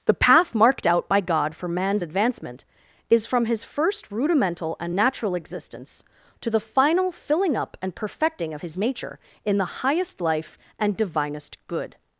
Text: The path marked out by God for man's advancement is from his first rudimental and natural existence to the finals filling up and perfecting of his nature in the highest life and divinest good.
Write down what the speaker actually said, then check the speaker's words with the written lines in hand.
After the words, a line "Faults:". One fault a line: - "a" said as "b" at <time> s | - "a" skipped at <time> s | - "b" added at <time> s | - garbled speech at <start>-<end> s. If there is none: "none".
The path marked out by God for man's advancement is from his first rudimental and natural existence to the final filling up and perfecting of his nature in the highest life and divinest good.
Faults:
- "finals" said as "final" at 6.6 s